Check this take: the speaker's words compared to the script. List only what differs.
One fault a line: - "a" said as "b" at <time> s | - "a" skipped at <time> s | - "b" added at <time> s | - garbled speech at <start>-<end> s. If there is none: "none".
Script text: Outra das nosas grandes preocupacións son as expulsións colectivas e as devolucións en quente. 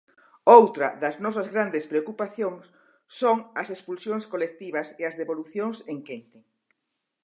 none